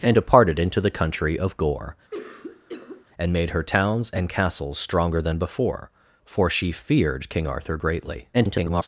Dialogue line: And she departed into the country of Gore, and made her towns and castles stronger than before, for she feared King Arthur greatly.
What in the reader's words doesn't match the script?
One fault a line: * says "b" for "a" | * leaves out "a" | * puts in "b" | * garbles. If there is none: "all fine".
* leaves out "she"
* garbles